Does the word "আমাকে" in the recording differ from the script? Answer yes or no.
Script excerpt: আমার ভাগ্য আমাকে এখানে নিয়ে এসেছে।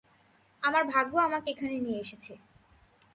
no